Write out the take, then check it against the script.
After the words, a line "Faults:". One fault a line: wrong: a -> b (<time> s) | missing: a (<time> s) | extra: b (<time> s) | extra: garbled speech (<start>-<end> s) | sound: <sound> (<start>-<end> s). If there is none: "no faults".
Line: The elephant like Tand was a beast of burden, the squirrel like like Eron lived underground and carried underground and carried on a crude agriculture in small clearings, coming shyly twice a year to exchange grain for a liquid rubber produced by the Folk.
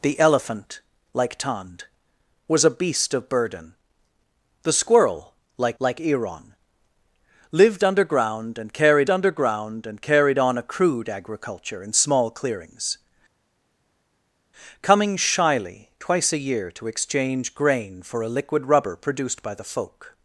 The elephant like Tand was a beast of burden, the squirrel like like Eron lived underground and carried underground and carried on a crude agriculture in small clearings, coming shyly twice a year to exchange grain for a liquid rubber produced by the Folk.
Faults:
no faults